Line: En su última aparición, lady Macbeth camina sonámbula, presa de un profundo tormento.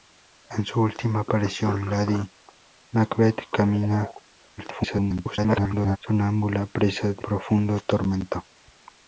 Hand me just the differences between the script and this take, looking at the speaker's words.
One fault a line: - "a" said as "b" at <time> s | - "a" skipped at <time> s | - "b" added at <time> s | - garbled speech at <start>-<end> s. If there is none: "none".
- garbled speech at 4.6-6.0 s
- "un" skipped at 7.3 s